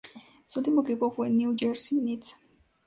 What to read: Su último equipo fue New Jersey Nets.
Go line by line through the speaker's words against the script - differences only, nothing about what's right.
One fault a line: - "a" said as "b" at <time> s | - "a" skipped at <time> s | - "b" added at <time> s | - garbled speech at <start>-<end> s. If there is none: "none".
none